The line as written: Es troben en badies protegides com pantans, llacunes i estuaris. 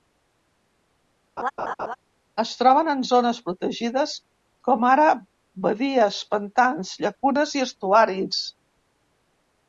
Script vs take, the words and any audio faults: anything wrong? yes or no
yes